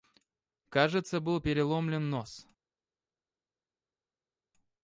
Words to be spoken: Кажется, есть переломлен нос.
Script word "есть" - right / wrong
wrong